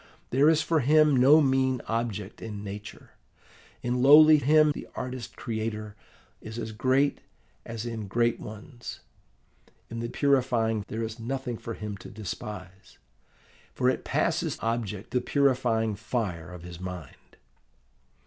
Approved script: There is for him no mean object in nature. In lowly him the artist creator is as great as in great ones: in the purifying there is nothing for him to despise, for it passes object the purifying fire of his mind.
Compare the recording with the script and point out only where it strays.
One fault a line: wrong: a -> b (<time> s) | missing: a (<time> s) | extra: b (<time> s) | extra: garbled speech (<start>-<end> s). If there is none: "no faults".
no faults